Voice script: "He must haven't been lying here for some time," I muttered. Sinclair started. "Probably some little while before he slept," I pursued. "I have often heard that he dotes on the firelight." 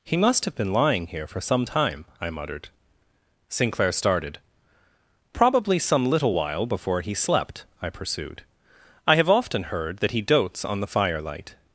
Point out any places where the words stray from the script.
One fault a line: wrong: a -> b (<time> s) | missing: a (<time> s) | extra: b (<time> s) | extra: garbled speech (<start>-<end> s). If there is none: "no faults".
wrong: haven't -> have (0.5 s)